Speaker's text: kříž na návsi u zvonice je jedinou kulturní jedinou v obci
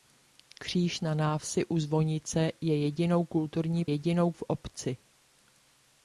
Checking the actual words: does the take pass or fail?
pass